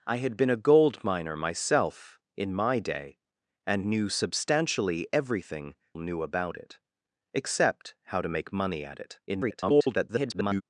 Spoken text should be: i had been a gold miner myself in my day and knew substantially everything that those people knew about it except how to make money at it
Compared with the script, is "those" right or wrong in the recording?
wrong